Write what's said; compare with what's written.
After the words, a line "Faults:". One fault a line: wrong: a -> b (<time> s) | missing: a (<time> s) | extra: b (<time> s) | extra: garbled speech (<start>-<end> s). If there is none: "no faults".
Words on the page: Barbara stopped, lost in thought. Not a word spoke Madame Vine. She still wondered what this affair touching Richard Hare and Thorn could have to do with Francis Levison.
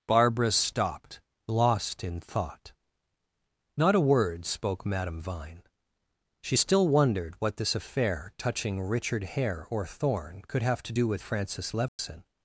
Barbara stopped, lost in thought. Not a word spoke Madame Vine. She still wondered what this affair touching Richard Hare or Thorn could have to do with Francis Levison.
Faults:
wrong: and -> or (9.7 s)